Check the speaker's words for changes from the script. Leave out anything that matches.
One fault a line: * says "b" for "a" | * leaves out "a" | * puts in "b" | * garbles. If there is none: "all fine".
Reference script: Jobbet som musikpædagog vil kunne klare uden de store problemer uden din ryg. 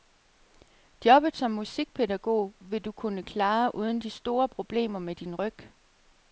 * puts in "du"
* says "med" for "uden"